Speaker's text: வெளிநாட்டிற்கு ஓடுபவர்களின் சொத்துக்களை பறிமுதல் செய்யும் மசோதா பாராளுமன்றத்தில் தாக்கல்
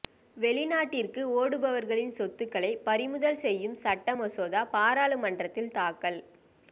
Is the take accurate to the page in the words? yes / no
no